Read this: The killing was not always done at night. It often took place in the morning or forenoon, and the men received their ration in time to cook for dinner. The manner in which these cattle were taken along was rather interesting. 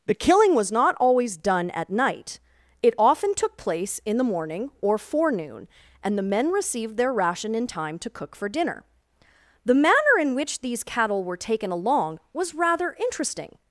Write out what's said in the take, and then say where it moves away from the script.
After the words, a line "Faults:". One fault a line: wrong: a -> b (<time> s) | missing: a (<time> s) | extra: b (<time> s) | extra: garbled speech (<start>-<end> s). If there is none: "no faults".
The killing was not always done at night. It often took place in the morning or forenoon, and the men received their ration in time to cook for dinner. The manner in which these cattle were taken along was rather interesting.
Faults:
no faults